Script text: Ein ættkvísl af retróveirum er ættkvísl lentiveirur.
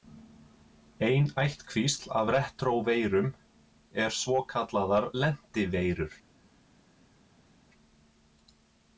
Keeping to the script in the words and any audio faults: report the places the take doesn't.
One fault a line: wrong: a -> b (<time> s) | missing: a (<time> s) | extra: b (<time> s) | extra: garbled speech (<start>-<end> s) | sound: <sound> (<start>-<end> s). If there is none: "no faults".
wrong: ættkvísl -> svokallaðar (4.2 s)